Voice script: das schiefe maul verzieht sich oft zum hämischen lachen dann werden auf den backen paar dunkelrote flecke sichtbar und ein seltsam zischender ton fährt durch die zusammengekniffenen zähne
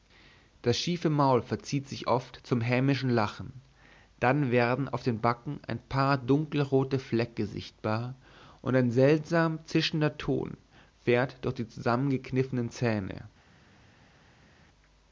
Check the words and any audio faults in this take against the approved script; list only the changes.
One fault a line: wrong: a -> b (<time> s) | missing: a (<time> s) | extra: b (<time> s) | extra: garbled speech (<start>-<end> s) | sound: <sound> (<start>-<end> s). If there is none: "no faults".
extra: ein (5.7 s)